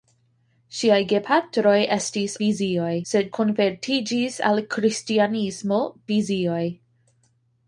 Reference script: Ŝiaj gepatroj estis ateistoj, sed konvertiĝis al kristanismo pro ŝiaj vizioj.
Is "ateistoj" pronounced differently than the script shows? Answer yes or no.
yes